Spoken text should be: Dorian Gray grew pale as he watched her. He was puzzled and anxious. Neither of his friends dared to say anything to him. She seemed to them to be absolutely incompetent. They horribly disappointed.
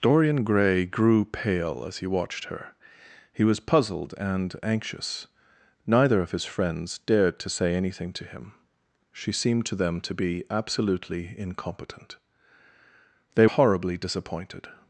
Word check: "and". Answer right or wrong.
right